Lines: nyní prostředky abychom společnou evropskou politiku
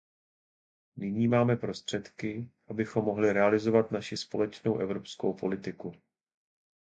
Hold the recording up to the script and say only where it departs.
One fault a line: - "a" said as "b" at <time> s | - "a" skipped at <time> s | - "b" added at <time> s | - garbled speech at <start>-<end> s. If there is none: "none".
- "máme" added at 1.3 s
- "mohli realizovat naši" added at 3.0 s